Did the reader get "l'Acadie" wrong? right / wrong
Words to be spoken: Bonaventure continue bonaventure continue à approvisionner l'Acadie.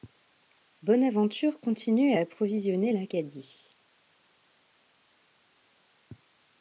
right